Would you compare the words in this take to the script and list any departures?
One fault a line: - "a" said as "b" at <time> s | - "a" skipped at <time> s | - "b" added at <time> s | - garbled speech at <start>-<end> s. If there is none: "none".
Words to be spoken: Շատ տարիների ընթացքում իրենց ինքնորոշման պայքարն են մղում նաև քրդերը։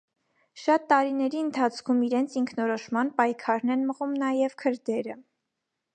none